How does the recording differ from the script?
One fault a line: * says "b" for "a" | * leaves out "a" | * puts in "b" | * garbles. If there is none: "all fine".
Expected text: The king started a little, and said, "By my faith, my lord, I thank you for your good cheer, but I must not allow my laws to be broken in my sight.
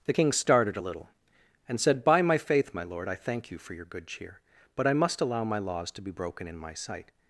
* leaves out "not"